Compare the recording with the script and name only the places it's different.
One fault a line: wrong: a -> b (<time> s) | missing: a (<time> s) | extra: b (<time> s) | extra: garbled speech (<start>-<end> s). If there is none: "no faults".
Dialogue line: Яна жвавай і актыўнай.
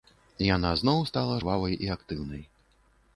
extra: зноў стала (0.8 s)